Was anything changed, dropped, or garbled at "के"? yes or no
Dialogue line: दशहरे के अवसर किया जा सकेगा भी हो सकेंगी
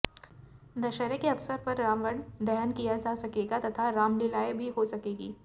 no